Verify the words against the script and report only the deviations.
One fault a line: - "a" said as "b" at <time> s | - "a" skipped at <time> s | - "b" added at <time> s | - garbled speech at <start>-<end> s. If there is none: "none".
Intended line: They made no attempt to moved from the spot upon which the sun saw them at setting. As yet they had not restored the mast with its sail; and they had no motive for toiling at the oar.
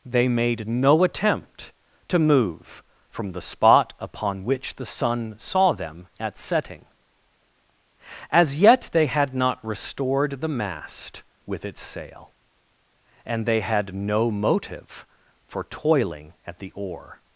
- "moved" said as "move" at 2.2 s